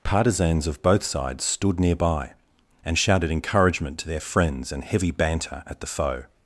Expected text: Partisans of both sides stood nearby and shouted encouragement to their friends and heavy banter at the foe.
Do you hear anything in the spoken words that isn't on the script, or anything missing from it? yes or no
no